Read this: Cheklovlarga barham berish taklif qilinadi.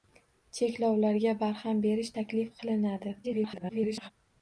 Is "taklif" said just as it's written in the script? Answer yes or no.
yes